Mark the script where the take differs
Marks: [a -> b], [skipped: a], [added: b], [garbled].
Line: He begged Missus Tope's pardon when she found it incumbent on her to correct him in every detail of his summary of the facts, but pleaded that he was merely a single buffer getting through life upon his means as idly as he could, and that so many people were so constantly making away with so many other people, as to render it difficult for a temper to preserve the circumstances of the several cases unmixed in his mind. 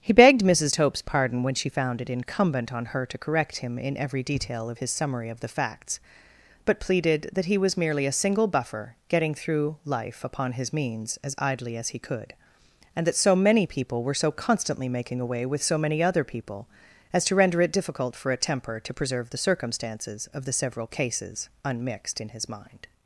He begged Missus Tope's pardon when she found it incumbent on her to correct him in every detail of his summary of the facts, but pleaded that he was merely a single buffer getting through life upon his means as idly as he could, and that so many people were so constantly making away with so many other people, as to render it difficult for a temper to preserve the circumstances of the several cases unmixed in his mind.